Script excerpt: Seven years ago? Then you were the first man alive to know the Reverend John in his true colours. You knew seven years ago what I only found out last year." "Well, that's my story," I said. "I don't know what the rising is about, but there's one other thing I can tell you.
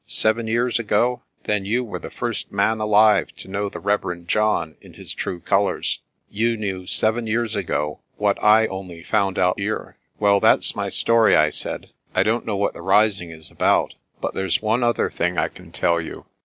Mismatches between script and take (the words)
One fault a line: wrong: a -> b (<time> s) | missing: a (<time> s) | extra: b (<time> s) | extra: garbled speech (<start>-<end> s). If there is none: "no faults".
missing: last (9.6 s)